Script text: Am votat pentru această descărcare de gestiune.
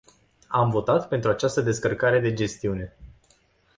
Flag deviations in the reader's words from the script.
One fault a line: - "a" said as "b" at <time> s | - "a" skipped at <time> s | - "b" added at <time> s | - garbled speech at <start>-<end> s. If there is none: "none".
none